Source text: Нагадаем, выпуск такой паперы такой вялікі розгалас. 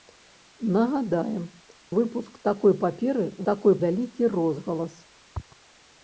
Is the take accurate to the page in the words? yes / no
yes